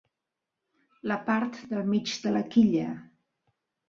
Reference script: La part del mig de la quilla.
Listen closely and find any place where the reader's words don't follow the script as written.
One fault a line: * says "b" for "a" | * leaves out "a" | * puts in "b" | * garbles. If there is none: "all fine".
all fine